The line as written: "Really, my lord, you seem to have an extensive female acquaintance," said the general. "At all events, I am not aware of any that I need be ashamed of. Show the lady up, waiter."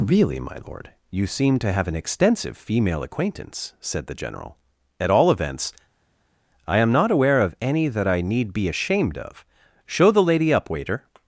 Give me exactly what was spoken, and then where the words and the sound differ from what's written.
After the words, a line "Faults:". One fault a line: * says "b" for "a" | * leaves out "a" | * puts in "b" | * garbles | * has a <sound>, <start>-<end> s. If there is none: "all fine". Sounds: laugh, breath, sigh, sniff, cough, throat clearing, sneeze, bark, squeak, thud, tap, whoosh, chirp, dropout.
"Really, my lord, you seem to have an extensive female acquaintance," said the general. "At all events, I am not aware of any that I need be ashamed of. Show the lady up, waiter."
Faults:
all fine